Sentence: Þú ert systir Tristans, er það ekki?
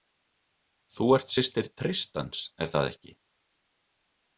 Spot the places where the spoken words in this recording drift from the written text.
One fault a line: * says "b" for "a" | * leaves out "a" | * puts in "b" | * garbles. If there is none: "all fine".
all fine